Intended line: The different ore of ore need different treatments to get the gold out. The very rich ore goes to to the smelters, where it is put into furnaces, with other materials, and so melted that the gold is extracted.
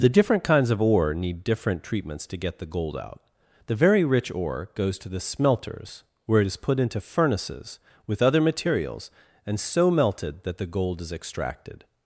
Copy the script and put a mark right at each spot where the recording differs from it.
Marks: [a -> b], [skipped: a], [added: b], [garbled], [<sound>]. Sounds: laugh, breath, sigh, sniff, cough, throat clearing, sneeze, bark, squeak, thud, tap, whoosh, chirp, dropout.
The different [ore -> kinds] of ore need different treatments to get the gold out. The very rich ore goes to [skipped: to] the smelters, where it is put into furnaces, with other materials, and so melted that the gold is extracted.